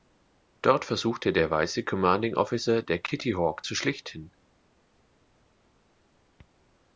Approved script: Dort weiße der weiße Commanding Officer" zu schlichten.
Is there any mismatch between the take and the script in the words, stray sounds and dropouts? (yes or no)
yes